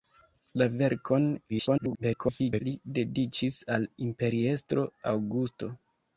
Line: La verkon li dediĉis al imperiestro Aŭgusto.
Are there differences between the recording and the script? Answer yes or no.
yes